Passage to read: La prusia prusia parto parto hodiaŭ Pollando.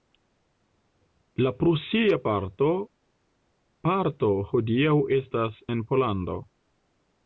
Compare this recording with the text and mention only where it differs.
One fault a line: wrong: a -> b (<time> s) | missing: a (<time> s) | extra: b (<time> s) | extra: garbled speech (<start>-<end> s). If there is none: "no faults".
missing: prusia (2.2 s)
extra: estas en (5.2 s)